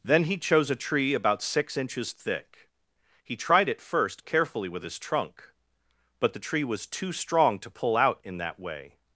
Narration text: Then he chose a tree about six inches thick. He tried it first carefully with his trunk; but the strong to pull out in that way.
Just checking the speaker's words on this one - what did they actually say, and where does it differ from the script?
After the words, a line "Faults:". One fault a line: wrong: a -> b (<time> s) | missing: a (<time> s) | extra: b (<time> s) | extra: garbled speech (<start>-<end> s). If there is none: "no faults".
Then he chose a tree about six inches thick. He tried it first carefully with his trunk; but the tree was too strong to pull out in that way.
Faults:
extra: tree was too (6.4 s)